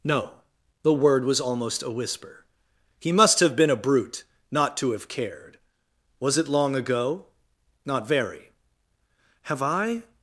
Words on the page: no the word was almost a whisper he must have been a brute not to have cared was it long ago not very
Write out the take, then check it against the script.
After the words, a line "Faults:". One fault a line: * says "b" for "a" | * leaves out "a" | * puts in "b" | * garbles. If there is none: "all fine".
no the word was almost a whisper he must have been a brute not to have cared was it long ago not very have i
Faults:
* puts in "have i"